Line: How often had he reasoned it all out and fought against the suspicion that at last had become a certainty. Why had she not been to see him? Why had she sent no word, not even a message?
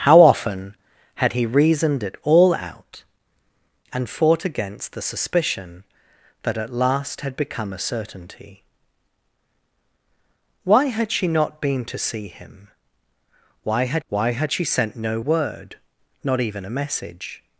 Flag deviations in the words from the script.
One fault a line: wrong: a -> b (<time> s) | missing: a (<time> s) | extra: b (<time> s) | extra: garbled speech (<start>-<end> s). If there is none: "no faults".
extra: why had (14.1 s)